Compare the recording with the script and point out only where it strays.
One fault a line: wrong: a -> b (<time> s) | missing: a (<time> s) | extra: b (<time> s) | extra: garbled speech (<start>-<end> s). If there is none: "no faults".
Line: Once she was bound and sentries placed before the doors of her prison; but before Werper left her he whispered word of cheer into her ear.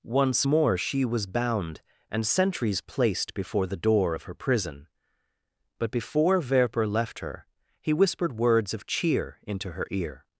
extra: more (0.4 s)
wrong: doors -> door (3.8 s)
wrong: word -> words (8.4 s)